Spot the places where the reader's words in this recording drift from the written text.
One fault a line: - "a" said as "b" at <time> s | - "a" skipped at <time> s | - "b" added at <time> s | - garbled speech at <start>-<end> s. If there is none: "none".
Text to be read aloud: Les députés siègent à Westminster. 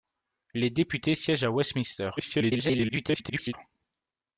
- garbled speech at 2.2-3.5 s